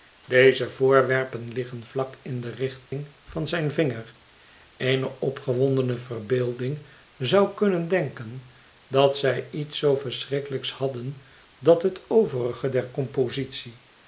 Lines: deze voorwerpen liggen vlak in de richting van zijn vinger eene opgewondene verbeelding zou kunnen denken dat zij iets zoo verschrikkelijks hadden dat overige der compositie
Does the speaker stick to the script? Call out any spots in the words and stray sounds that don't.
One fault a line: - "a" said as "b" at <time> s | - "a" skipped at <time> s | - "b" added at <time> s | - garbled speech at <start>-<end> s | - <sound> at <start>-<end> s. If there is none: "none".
- dropout at 2.9-2.9 s
- "het" added at 11.8 s